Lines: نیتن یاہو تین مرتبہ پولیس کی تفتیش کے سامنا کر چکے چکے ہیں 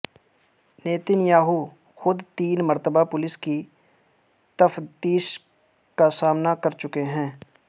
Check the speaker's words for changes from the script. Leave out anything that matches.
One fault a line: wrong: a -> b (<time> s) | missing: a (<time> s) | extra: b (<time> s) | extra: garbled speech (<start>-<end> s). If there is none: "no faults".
extra: خود (2.0 s)
wrong: کے -> کا (6.0 s)
missing: چکے (7.0 s)